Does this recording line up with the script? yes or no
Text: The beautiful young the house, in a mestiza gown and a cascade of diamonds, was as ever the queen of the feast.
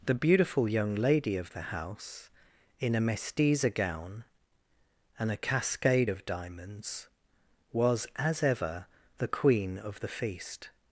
no